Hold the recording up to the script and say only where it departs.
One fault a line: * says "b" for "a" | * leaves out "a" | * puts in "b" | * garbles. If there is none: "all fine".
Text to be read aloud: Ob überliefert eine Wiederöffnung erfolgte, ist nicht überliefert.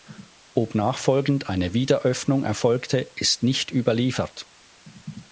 * says "nachfolgend" for "überliefert"